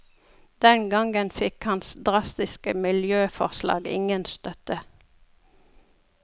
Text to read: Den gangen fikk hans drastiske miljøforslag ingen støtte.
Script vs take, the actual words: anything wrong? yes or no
no